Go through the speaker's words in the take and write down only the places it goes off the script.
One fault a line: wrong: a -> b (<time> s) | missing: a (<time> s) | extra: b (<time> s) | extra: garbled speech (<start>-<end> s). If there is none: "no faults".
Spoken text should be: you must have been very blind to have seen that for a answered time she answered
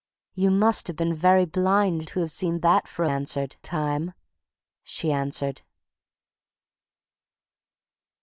no faults